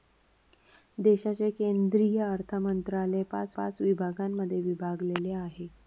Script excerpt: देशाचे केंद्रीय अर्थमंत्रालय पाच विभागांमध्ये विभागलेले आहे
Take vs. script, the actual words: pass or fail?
fail